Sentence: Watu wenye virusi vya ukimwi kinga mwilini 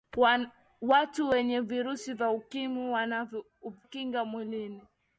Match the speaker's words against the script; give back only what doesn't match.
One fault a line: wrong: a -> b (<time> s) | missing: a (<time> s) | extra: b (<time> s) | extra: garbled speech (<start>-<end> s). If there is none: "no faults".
no faults